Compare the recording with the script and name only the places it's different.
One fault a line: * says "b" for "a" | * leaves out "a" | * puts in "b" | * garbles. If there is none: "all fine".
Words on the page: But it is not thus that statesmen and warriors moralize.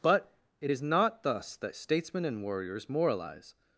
all fine